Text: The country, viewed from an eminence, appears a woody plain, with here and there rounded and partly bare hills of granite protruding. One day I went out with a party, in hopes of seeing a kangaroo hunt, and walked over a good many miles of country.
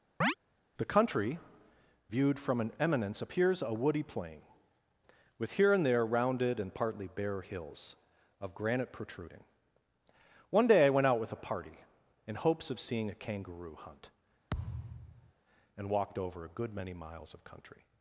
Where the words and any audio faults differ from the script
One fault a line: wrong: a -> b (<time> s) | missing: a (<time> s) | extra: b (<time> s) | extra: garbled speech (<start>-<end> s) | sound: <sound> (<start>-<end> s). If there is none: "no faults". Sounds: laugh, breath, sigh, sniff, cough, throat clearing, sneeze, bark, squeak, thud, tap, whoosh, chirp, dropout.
sound: chirp (0.2-0.3 s)
sound: thud (14.5-15.3 s)